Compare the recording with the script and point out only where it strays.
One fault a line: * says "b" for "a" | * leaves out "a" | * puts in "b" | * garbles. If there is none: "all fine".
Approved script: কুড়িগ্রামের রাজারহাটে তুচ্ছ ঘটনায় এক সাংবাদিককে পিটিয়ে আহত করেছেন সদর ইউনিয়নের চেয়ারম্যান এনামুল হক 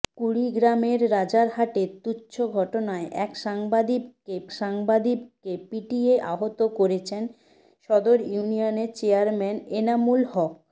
* puts in "সাংবাদিককে"